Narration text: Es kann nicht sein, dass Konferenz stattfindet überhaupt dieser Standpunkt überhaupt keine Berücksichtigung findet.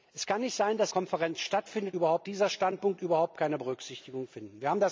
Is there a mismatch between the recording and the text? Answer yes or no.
no